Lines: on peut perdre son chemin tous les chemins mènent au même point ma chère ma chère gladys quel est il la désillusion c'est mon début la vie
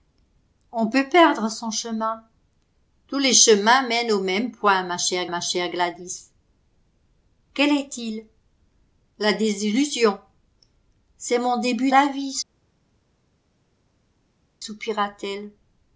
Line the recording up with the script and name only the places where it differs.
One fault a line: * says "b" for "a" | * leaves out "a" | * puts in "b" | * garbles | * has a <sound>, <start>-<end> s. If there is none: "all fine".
all fine